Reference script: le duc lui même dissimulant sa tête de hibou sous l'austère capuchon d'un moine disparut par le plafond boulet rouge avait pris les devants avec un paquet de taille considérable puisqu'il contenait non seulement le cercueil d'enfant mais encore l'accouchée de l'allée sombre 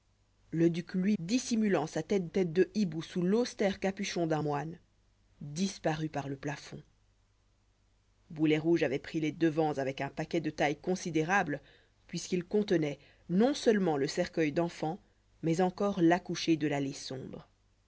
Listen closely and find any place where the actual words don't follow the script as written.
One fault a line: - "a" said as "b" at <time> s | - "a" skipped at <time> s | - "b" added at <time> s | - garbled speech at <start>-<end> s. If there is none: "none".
- "même" skipped at 1.1 s
- "tête" added at 2.3 s